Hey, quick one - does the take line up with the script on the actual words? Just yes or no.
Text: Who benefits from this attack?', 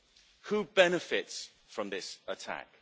yes